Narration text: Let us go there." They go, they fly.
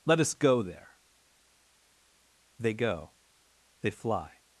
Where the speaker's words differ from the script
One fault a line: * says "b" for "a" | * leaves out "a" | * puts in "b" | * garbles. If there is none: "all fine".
all fine